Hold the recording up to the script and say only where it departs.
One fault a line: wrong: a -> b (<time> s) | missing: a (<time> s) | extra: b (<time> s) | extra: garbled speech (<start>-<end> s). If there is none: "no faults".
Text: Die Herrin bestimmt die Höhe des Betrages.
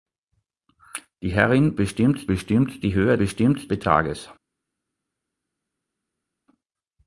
extra: bestimmt (2.2 s)
wrong: des -> bestimmt (3.2 s)